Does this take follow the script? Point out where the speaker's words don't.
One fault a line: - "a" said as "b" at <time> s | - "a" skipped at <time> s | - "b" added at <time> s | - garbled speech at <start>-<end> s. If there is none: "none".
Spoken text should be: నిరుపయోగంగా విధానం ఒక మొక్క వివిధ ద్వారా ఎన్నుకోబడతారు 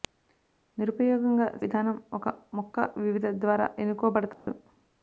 none